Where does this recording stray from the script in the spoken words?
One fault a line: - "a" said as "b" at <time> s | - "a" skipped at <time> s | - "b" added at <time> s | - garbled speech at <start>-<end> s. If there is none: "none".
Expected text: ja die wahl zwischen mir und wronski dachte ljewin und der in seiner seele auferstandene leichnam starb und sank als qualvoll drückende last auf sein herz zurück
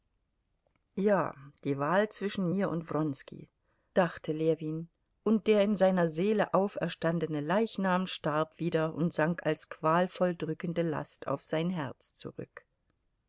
- "wieder" added at 8.6 s